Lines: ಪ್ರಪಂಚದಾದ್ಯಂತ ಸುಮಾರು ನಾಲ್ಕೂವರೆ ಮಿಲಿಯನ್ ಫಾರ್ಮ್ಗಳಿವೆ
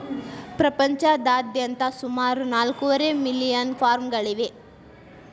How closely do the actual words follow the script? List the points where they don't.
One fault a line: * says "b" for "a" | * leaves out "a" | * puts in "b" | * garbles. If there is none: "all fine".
all fine